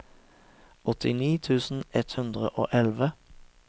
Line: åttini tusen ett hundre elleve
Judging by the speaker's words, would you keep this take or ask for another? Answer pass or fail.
fail